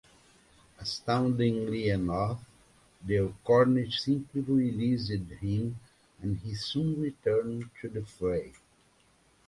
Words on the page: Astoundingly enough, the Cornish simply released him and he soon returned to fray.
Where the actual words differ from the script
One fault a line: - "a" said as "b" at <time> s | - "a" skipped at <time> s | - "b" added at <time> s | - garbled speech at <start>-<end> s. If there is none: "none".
- "the" added at 7.9 s